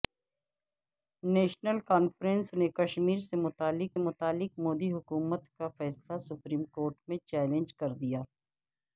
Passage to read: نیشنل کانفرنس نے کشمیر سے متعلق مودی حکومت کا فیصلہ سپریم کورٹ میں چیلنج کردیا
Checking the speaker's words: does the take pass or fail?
fail